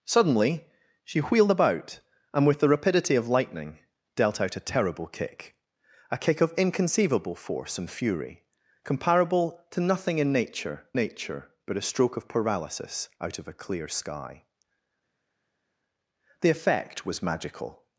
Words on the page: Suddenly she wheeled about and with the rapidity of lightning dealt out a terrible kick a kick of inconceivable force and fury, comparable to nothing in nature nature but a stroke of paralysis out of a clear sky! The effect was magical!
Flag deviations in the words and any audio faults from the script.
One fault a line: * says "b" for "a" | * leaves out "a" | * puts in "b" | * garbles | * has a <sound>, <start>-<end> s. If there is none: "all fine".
all fine